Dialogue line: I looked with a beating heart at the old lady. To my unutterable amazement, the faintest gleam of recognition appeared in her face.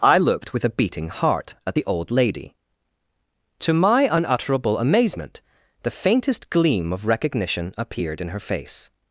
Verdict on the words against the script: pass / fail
pass